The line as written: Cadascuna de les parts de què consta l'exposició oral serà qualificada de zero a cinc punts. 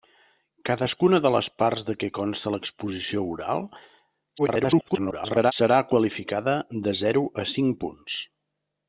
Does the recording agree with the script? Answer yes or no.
no